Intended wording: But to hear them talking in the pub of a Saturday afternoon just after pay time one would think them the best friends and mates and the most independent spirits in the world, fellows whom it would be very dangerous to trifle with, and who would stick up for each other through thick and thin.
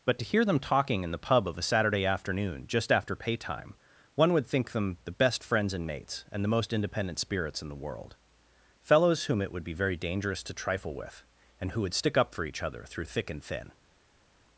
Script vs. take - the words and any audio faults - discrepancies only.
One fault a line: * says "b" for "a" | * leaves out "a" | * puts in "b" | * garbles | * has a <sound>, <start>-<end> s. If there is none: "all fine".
all fine